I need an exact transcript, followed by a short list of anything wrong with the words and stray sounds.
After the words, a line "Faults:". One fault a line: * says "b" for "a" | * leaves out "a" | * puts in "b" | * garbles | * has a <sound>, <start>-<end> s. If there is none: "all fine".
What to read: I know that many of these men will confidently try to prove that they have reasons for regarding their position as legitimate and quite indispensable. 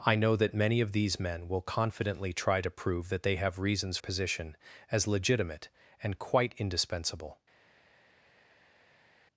I know that many of these men will confidently try to prove that they have reasons position as legitimate and quite indispensable.
Faults:
* leaves out "for regarding their"